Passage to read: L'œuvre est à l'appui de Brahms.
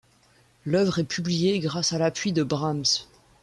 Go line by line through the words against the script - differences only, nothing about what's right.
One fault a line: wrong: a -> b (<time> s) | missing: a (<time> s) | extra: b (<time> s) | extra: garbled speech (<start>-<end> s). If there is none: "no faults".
extra: publiée grâce (1.0 s)